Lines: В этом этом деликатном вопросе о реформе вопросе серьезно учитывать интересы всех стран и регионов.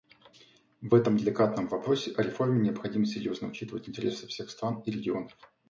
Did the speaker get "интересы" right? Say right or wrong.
right